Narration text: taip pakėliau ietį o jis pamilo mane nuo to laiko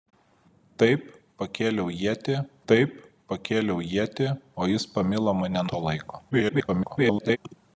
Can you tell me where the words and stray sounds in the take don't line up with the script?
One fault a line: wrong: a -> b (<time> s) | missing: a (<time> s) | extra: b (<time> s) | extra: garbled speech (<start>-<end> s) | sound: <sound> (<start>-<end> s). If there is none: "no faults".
extra: taip pakėliau ietį (2.7 s)
missing: nuo (5.7 s)
extra: garbled speech (6.3-7.4 s)